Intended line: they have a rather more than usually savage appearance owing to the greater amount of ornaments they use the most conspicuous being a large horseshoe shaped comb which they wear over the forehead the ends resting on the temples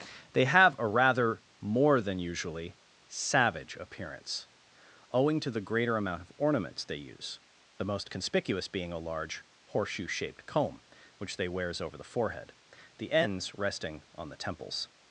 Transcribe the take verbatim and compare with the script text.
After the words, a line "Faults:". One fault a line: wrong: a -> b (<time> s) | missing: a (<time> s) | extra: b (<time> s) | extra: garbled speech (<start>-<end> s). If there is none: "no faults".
they have a rather more than usually savage appearance owing to the greater amount of ornaments they use the most conspicuous being a large horseshoe shaped comb which they wears over the forehead the ends resting on the temples
Faults:
wrong: wear -> wears (11.5 s)